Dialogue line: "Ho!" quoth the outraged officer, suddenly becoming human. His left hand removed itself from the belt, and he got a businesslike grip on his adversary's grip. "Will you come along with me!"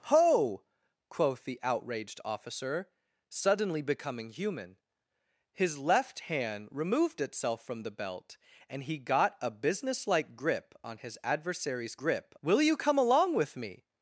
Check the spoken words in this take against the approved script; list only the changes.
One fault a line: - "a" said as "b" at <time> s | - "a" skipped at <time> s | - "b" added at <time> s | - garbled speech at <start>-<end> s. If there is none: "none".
none